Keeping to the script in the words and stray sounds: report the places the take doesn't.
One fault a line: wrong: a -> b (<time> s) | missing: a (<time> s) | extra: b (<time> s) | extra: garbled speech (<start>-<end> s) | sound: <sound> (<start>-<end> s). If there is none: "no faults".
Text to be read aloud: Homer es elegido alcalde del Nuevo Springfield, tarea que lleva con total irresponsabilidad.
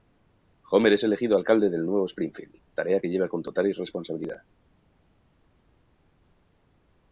no faults